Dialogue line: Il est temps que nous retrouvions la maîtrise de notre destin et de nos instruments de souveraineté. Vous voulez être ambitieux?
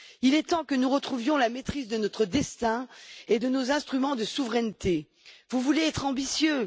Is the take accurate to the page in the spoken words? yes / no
yes